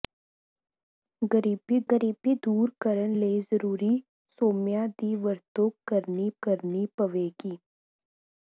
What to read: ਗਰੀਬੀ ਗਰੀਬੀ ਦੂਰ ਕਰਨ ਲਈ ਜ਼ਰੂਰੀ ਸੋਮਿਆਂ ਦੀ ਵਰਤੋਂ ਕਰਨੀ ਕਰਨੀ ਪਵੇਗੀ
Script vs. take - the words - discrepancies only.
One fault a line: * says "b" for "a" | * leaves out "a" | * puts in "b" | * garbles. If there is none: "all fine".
all fine